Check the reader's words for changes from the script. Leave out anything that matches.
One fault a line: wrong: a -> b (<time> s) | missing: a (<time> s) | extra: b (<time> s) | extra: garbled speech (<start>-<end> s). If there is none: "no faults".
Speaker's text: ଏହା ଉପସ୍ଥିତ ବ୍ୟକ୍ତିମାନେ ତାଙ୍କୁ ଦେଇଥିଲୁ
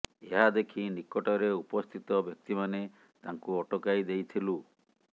extra: ଦେଖି ନିକଟରେ (0.5 s)
extra: ଅଟକାଇ (3.6 s)